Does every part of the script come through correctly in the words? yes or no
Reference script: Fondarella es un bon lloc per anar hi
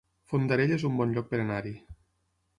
yes